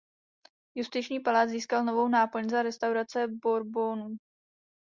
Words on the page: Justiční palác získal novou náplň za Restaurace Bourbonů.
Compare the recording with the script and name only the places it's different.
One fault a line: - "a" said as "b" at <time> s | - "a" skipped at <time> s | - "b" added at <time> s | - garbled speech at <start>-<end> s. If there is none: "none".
none